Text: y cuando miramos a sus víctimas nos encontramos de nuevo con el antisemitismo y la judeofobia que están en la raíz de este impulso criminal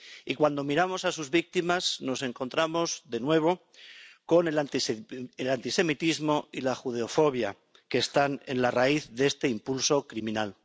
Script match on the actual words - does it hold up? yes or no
yes